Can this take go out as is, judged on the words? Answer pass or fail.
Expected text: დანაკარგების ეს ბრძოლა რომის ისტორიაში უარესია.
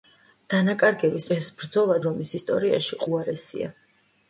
pass